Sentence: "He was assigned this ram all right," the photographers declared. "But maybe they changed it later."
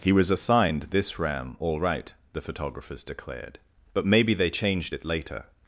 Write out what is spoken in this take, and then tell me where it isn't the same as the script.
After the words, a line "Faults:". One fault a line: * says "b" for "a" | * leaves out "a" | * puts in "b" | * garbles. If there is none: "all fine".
"He was assigned this ram all right," the photographers declared. "But maybe they changed it later."
Faults:
all fine